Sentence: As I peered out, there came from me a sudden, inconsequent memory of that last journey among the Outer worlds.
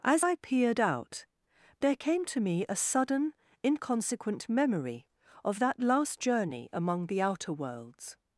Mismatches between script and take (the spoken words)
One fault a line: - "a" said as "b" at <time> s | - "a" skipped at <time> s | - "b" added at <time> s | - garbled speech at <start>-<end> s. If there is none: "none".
- "from" said as "to" at 2.3 s